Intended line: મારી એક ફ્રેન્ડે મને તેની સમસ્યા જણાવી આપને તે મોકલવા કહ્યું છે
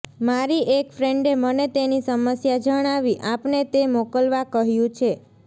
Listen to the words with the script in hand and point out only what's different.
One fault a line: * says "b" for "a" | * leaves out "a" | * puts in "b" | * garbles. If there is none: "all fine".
all fine